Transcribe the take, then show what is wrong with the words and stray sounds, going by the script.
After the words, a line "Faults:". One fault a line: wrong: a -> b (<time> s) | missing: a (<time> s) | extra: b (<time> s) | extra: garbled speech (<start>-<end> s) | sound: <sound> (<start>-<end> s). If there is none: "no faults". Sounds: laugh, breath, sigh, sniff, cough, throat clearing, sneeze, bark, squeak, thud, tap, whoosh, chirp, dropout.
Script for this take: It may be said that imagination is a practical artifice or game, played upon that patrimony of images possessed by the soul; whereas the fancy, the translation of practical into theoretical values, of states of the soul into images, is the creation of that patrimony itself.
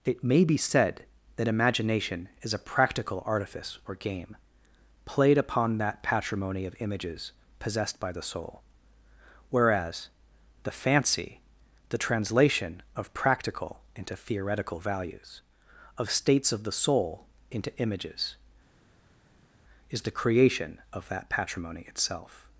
It may be said that imagination is a practical artifice or game, played upon that patrimony of images possessed by the soul; whereas the fancy, the translation of practical into theoretical values, of states of the soul into images, is the creation of that patrimony itself.
Faults:
no faults